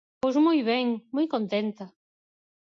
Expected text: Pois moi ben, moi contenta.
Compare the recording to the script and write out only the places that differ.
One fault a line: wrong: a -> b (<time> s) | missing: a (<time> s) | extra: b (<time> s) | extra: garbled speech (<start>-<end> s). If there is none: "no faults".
no faults